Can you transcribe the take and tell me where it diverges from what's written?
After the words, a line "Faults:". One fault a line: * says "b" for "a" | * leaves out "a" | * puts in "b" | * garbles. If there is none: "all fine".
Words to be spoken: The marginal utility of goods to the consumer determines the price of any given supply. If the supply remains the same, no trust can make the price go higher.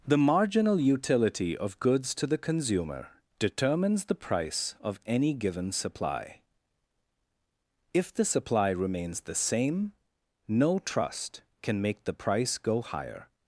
The marginal utility of goods to the consumer determines the price of any given supply. If the supply remains the same, no trust can make the price go higher.
Faults:
all fine